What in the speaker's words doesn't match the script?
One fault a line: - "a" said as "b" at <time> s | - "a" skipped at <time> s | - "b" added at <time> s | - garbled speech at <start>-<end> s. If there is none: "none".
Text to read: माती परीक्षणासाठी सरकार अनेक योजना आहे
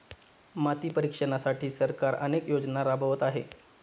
- "राबवत" added at 2.8 s